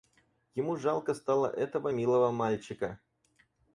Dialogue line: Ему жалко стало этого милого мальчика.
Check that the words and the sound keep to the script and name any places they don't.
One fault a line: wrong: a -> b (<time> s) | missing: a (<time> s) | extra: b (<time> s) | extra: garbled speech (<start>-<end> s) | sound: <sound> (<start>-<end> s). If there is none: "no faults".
no faults